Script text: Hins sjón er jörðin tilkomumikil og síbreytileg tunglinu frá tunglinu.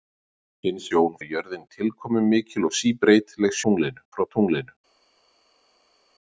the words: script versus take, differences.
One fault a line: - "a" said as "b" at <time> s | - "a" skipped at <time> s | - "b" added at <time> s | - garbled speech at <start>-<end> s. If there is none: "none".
none